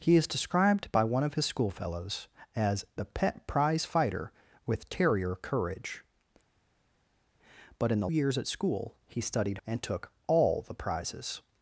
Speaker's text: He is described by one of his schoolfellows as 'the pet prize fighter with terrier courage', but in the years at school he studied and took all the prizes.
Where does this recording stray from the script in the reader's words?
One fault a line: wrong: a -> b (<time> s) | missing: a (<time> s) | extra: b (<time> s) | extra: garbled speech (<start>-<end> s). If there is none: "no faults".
no faults